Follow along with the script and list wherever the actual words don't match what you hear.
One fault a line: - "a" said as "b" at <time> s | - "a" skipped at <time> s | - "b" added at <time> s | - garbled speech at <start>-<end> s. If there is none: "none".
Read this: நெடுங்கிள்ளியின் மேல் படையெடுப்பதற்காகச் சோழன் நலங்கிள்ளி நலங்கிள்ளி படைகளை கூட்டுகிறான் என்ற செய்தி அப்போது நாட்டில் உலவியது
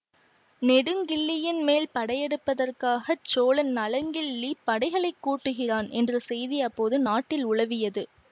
- "நலங்கிள்ளி" skipped at 4.5 s